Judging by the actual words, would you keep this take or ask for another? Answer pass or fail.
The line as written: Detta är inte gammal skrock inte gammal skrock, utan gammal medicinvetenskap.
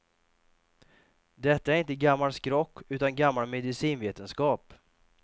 fail